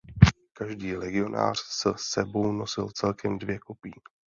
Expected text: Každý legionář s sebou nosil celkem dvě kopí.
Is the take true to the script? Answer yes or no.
yes